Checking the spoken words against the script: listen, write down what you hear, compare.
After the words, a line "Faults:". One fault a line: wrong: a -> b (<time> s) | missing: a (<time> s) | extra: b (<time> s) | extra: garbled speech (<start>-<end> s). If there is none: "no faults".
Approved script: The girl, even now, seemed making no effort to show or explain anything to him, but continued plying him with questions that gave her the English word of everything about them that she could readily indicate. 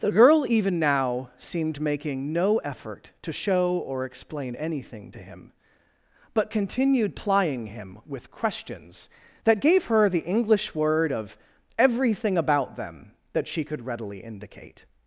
The girl, even now, seemed making no effort to show or explain anything to him, but continued plying him with questions that gave her the English word of everything about them that she could readily indicate.
Faults:
no faults